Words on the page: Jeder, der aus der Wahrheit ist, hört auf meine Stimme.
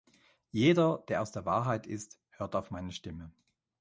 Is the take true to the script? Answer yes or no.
yes